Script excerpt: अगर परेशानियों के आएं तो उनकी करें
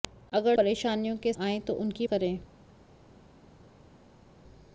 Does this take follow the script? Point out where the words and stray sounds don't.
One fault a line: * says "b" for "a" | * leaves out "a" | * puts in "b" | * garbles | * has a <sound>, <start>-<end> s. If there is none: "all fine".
all fine